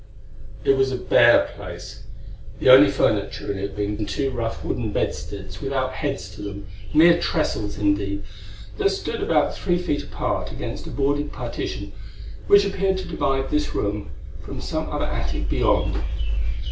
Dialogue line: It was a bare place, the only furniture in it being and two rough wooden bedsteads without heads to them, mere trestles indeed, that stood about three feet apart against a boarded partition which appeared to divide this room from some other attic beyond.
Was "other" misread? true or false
false